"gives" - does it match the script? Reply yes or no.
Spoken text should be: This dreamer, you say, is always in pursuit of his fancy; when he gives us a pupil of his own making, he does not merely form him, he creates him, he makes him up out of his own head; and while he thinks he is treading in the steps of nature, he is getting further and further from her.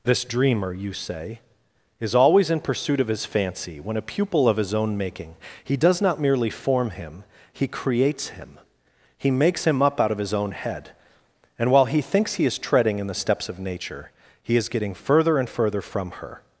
no